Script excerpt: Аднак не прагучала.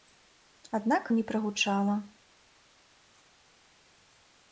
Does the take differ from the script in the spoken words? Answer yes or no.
no